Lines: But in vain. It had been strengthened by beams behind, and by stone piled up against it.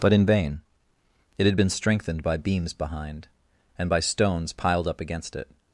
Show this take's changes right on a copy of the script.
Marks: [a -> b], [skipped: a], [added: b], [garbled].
But in vain. It had been strengthened by beams behind, and by [stone -> stones] piled up against it.